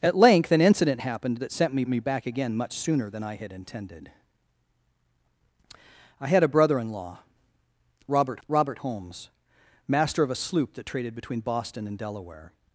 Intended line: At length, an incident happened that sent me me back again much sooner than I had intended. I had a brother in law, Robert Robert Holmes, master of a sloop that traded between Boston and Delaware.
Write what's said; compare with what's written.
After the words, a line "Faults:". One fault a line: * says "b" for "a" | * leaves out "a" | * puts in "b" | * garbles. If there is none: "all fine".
At length, an incident happened that sent me me back again much sooner than I had intended. I had a brother in law, Robert Robert Holmes, master of a sloop that traded between Boston and Delaware.
Faults:
all fine